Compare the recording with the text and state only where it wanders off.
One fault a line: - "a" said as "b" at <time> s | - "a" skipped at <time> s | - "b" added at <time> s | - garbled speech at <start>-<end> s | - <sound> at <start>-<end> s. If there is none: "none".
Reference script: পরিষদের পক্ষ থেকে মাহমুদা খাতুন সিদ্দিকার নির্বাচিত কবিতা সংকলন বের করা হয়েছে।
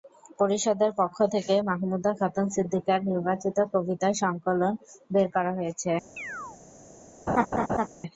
- chirp at 6.2-6.6 s
- laugh at 7.3-7.9 s